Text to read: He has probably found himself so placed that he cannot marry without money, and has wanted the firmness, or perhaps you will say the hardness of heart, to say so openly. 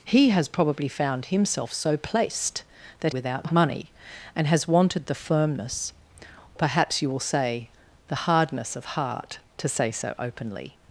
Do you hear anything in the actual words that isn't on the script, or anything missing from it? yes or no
yes